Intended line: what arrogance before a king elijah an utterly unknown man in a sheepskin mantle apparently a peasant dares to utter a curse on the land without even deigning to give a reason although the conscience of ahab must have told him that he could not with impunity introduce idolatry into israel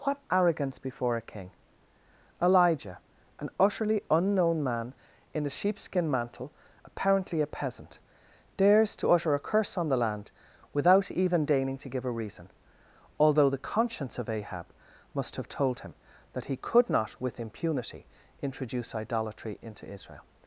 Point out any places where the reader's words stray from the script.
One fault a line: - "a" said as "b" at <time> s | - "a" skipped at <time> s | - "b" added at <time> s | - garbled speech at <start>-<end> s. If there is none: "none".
none